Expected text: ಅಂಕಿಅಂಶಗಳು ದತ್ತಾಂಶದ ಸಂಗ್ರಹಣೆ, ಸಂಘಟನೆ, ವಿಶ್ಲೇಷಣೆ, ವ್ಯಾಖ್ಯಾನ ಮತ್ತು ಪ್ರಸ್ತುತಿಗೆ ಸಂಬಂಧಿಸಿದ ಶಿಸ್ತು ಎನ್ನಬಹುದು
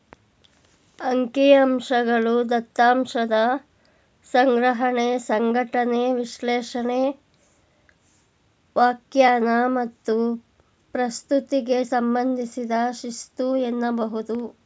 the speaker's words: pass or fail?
pass